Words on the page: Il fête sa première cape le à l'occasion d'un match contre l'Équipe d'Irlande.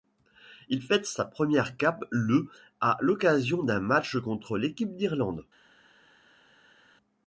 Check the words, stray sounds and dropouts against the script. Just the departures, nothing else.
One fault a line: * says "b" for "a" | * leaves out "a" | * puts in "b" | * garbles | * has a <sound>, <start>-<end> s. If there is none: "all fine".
all fine